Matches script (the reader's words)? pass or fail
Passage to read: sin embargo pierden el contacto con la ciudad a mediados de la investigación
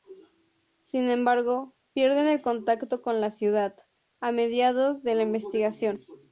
pass